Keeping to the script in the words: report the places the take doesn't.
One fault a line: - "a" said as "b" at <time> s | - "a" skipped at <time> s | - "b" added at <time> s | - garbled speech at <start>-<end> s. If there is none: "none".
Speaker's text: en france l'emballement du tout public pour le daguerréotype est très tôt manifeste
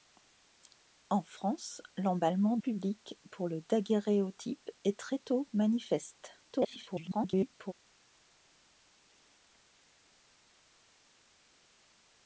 - "du tout" skipped at 2.6 s
- garbled speech at 6.5-7.7 s